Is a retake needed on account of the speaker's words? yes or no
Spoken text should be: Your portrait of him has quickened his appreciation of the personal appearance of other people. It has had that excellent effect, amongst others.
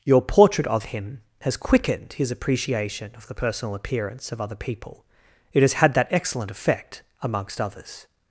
no